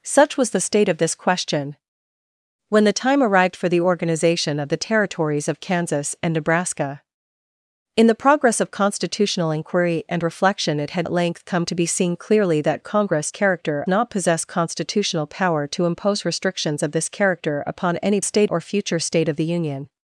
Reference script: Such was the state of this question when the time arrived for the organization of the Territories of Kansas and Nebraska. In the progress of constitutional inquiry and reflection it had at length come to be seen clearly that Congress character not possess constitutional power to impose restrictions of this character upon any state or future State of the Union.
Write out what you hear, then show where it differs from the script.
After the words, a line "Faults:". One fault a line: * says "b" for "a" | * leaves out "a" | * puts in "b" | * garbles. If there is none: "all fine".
Such was the state of this question when the time arrived for the organization of the Territories of Kansas and Nebraska. In the progress of constitutional inquiry and reflection it had at length come to be seen clearly that Congress character not possess constitutional power to impose restrictions of this character upon any state or future State of the Union.
Faults:
all fine